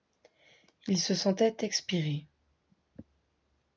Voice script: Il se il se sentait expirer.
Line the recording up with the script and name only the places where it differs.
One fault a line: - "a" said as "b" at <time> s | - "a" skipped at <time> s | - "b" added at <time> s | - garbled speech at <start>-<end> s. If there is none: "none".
- "il se" skipped at 1.1 s